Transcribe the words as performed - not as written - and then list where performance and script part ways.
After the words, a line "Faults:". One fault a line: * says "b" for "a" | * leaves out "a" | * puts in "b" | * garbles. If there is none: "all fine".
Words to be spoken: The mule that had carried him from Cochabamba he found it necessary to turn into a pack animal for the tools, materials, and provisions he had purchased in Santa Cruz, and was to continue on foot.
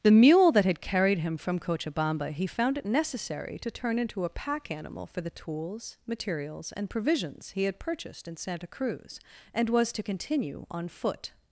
The mule that had carried him from Cochabamba he found it necessary to turn into a pack animal for the tools, materials, and provisions he had purchased in Santa Cruz, and was to continue on foot.
Faults:
all fine